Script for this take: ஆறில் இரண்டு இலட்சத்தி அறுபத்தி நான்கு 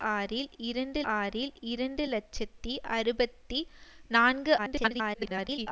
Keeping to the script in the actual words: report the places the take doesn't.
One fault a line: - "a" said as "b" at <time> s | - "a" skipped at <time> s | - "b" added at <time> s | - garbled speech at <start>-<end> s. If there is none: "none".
- "ஆறில் இரண்டு" added at 1.1 s
- garbled speech at 4.6-5.7 s